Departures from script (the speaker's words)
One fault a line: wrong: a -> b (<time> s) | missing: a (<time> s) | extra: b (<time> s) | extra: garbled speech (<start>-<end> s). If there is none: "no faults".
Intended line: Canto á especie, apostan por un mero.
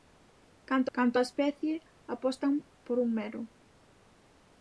extra: canto (1.0 s)